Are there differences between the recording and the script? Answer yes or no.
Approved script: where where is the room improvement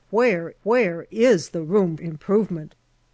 no